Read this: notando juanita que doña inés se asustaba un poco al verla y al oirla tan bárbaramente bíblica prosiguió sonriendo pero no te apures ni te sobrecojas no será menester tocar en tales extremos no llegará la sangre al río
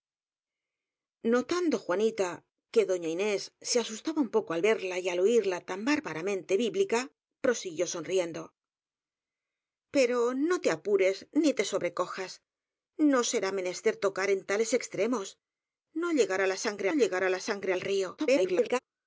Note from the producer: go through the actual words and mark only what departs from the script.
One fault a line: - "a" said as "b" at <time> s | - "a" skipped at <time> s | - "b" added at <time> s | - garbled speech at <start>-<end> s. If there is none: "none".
- "llegará la sangre" added at 16.9 s
- garbled speech at 18.2-18.8 s